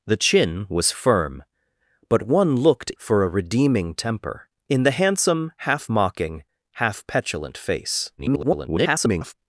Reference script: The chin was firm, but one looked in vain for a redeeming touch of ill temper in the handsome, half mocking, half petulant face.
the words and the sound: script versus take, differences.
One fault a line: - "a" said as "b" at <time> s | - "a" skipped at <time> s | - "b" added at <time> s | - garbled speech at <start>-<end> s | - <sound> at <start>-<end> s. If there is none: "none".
- "in vain" skipped at 2.9 s
- "touch of ill" skipped at 3.9 s
- garbled speech at 8.2-9.3 s